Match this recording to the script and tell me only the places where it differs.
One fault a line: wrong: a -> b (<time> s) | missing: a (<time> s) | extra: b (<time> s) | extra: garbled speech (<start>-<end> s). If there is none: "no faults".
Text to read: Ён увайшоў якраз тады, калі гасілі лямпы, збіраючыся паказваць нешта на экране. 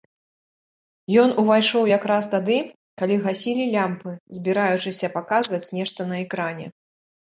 no faults